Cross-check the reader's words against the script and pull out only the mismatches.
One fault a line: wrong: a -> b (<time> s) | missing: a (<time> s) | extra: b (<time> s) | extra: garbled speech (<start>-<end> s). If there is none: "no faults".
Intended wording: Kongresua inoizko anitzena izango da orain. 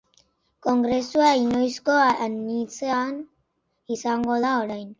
no faults